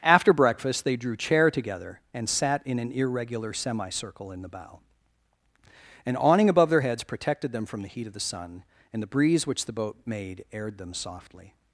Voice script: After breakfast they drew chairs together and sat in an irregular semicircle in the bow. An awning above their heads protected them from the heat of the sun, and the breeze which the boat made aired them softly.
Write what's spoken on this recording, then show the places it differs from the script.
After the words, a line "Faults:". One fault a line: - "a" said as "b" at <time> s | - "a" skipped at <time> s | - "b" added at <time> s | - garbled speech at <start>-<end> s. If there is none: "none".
After breakfast they drew chair together and sat in an irregular semicircle in the bow. An awning above their heads protected them from the heat of the sun, and the breeze which the boat made aired them softly.
Faults:
- "chairs" said as "chair" at 1.1 s